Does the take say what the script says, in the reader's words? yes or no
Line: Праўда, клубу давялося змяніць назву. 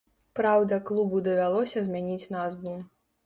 yes